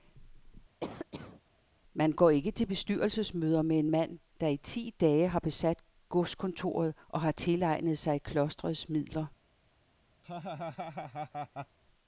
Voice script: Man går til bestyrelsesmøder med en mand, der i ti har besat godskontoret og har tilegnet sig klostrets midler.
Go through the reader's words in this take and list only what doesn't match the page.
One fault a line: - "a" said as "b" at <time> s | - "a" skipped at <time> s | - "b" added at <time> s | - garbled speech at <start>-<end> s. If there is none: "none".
- "ikke" added at 2.3 s
- "dage" added at 5.0 s